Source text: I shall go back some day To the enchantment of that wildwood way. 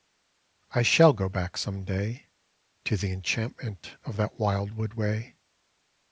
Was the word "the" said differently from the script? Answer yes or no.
no